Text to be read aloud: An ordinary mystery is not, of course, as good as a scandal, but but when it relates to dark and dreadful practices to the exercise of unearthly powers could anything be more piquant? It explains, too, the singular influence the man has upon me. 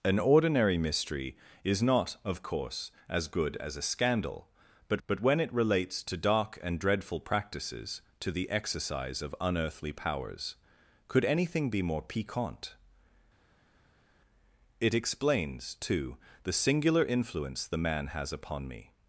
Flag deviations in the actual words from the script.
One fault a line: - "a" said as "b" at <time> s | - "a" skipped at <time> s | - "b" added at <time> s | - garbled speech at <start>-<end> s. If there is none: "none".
none